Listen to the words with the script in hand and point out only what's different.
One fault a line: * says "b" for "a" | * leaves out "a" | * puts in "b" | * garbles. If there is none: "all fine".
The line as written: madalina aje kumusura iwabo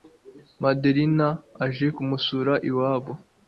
all fine